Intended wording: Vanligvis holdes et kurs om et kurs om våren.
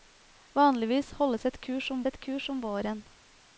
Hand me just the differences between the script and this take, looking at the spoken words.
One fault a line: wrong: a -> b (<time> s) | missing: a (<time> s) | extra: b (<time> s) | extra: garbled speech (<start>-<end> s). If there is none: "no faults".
no faults